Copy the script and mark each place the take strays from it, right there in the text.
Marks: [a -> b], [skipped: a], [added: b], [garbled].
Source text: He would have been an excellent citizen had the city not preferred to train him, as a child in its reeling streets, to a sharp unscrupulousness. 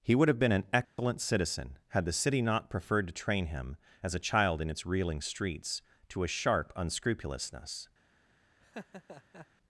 He would have been an excellent citizen had the city not preferred to train him, as a child in its reeling streets, to a sharp unscrupulousness.